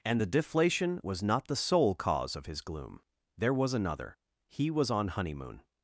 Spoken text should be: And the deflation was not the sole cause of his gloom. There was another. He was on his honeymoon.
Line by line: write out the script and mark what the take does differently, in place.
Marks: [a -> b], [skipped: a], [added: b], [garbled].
And the deflation was not the sole cause of his gloom. There was another. He was on [skipped: his] honeymoon.